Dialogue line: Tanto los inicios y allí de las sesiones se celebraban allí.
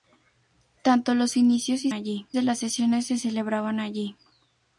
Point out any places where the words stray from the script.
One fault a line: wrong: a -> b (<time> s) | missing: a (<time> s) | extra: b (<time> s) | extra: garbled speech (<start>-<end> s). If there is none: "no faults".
no faults